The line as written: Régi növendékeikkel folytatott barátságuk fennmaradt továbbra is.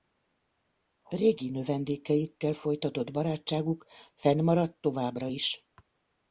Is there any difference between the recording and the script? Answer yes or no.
no